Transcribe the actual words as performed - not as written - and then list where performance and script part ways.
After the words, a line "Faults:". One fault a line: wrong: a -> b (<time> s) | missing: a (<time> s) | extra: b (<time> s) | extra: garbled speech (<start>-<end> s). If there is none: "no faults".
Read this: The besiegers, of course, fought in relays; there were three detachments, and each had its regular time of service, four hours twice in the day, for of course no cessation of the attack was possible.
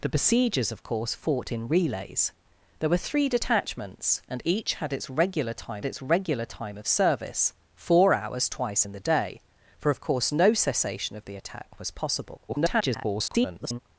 The besiegers, of course, fought in relays; there were three detachments, and each had its regular time its regular time of service, four hours twice in the day, for of course no cessation of the attack was possible. [garbled]
Faults:
extra: its regular time (5.9 s)
extra: garbled speech (12.5-13.8 s)